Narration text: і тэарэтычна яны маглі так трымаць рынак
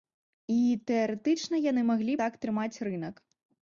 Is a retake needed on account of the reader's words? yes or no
no